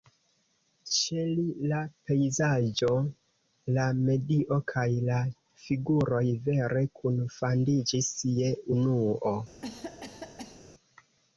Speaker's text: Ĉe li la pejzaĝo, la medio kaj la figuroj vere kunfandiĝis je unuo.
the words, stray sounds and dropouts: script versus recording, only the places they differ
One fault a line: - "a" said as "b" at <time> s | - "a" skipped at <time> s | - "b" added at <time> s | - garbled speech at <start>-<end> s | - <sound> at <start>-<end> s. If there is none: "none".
- cough at 9.6-10.7 s